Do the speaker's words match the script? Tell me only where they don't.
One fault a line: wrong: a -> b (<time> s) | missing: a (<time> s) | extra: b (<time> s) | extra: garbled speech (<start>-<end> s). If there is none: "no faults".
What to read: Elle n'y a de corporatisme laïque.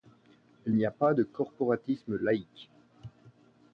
wrong: Elle -> Il (0.7 s)
extra: pas (0.9 s)